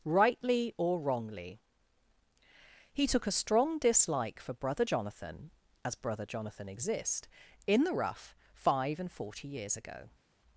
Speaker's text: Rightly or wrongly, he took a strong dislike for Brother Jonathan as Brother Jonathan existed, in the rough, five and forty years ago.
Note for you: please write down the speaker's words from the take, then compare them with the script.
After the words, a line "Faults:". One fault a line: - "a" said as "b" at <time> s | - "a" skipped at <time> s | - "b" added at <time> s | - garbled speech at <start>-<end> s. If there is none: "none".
Rightly or wrongly, he took a strong dislike for Brother Jonathan as Brother Jonathan exist, in the rough, five and forty years ago.
Faults:
- "existed" said as "exist" at 6.7 s